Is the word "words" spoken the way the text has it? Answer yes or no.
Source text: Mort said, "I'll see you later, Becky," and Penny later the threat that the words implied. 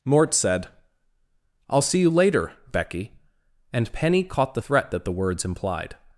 yes